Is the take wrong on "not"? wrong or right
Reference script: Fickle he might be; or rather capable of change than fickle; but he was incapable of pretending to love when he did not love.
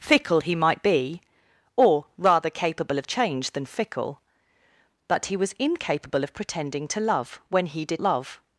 wrong